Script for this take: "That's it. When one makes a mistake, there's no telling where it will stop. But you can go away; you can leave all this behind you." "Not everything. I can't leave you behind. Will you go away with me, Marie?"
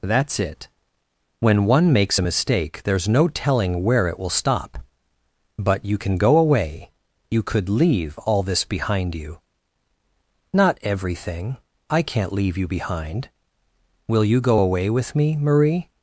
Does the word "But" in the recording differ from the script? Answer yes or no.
no